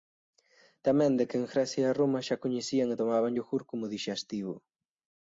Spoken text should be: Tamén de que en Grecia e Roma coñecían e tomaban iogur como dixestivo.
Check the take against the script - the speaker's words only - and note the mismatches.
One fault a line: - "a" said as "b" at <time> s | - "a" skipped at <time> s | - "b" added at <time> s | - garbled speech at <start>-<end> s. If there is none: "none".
- "xa" added at 2.3 s